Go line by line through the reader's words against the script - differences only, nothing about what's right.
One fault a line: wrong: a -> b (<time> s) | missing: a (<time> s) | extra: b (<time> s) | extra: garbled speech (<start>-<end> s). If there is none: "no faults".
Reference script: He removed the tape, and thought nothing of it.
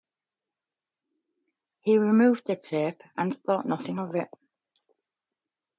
no faults